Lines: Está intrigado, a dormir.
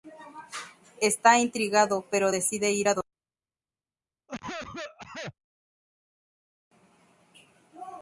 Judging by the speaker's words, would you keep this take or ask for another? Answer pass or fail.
fail